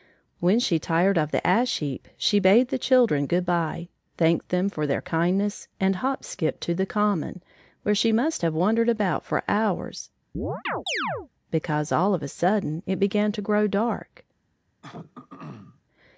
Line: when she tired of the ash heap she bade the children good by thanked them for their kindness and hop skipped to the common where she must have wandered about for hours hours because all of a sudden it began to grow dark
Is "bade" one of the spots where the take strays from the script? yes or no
no